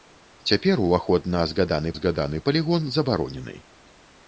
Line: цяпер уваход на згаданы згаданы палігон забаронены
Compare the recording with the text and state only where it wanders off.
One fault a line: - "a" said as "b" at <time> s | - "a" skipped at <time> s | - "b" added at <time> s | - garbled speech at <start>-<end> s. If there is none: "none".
none